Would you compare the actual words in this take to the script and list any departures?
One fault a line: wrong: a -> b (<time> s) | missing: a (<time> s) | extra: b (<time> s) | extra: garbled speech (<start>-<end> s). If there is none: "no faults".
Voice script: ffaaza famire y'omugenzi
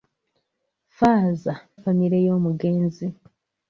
no faults